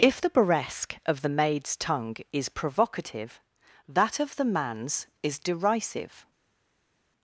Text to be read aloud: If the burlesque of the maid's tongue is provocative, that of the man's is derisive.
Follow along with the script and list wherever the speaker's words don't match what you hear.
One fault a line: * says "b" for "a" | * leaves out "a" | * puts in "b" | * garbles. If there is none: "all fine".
all fine